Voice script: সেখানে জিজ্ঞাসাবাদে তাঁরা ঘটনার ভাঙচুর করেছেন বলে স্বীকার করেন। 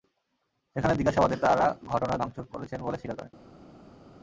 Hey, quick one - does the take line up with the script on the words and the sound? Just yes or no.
yes